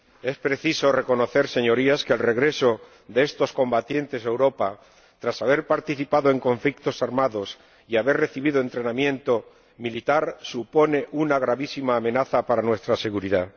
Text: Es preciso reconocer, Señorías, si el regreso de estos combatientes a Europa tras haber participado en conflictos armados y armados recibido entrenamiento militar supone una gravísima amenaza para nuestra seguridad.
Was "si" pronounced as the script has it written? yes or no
no